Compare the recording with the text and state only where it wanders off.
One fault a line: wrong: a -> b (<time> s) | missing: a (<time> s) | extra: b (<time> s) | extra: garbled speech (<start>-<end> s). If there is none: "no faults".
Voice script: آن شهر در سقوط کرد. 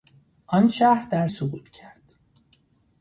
no faults